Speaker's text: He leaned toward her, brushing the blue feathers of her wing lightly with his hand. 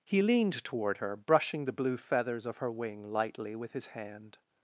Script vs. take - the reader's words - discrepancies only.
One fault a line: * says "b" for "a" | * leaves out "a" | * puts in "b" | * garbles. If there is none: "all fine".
all fine